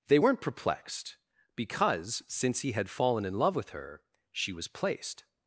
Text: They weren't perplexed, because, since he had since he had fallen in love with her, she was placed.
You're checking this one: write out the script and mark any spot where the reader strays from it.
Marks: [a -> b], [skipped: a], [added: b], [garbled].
They weren't perplexed, because, since he had [skipped: since he had] fallen in love with her, she was placed.